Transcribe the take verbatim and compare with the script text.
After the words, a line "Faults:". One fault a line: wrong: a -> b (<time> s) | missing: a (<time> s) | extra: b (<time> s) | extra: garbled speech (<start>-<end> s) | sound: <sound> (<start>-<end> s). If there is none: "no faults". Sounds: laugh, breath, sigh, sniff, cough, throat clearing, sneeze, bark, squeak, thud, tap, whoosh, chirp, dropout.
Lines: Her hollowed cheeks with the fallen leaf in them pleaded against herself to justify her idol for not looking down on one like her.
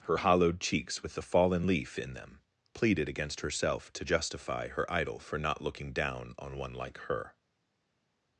Her hollowed cheeks with the fallen leaf in them pleaded against herself to justify her idol for not looking down on one like her.
Faults:
no faults